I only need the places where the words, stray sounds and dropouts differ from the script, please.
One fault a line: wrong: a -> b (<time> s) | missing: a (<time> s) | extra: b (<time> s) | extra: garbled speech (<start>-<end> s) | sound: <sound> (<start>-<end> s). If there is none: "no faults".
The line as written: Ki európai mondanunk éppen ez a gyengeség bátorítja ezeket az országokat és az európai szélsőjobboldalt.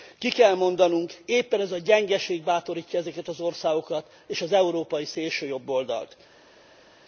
wrong: európai -> kell (0.3 s)